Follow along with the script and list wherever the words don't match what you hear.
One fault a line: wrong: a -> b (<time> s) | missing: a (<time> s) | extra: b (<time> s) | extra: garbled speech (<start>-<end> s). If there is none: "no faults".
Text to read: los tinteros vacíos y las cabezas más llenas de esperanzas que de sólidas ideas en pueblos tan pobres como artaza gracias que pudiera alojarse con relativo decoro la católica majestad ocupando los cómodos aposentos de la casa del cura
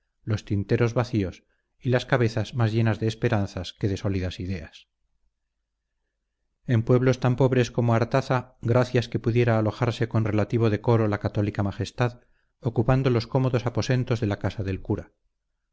no faults